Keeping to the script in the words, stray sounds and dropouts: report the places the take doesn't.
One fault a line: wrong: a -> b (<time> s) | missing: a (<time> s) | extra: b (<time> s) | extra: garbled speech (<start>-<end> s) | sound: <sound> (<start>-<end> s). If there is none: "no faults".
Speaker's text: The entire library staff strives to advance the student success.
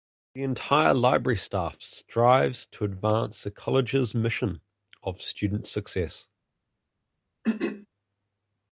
extra: college's mission of (3.5 s)
sound: throat clearing (7.4-7.9 s)